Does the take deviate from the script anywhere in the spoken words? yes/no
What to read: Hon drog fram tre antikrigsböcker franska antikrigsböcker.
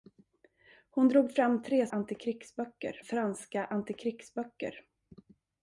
no